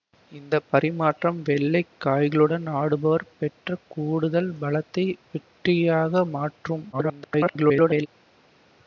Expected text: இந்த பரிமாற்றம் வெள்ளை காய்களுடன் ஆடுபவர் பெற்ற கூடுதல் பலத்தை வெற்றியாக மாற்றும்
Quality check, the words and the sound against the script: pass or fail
fail